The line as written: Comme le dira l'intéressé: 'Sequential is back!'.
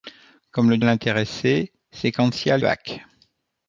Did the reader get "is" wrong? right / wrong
wrong